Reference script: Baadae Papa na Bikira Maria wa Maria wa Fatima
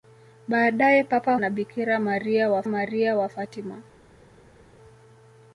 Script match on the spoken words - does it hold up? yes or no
yes